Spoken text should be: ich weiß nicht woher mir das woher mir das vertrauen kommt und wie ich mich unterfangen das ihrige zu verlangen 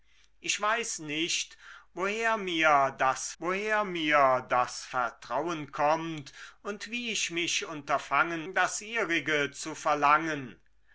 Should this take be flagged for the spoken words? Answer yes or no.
no